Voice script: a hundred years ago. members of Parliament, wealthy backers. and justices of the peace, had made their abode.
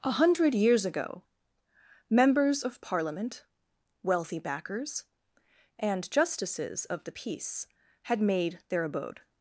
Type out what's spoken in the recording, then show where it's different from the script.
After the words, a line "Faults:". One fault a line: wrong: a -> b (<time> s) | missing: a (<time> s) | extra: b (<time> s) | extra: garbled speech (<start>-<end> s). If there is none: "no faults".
a hundred years ago. members of Parliament, wealthy backers. and justices of the peace, had made their abode.
Faults:
no faults